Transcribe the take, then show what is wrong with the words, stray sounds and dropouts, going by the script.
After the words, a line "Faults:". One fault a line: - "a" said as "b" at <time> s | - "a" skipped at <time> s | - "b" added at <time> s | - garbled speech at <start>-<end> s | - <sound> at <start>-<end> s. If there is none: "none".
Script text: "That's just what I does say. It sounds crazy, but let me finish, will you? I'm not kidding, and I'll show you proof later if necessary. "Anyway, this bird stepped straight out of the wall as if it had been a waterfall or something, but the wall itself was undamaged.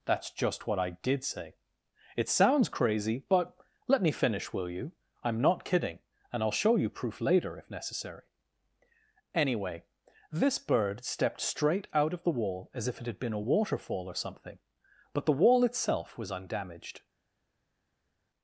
"That's just what I did say. It sounds crazy, but let me finish, will you? I'm not kidding, and I'll show you proof later if necessary. "Anyway, this bird stepped straight out of the wall as if it had been a waterfall or something, but the wall itself was undamaged.
Faults:
- "does" said as "did" at 0.9 s